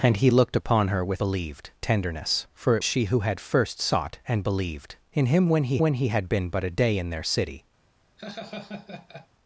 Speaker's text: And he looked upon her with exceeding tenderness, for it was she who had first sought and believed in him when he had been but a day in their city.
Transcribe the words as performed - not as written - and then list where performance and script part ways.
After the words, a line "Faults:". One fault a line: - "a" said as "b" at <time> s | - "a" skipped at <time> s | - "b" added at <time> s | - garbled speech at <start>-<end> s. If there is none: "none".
And he looked upon her with believed tenderness, for it she who had first sought and believed in him when he when he had been but a day in their city.
Faults:
- "exceeding" said as "believed" at 1.2 s
- "was" skipped at 2.8 s
- "when he" added at 5.8 s